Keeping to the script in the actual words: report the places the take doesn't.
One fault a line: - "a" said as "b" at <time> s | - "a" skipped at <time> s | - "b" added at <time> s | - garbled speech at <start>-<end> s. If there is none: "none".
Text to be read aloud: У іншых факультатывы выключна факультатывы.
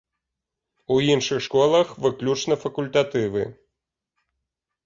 - "факультатывы" said as "школах" at 1.4 s